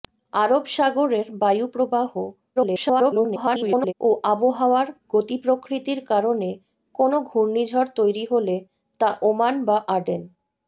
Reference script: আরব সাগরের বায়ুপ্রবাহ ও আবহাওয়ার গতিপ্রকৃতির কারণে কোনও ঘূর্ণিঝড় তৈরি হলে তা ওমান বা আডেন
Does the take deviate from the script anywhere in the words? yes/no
yes